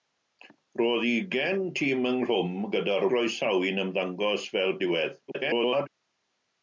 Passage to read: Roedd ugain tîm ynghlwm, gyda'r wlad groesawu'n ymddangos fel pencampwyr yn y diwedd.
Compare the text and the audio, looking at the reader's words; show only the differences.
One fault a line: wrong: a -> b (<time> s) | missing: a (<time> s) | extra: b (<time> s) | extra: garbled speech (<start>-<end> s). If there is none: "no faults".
missing: wlad (3.0 s)
missing: pencampwyr yn (4.8 s)
extra: garbled speech (5.3-5.9 s)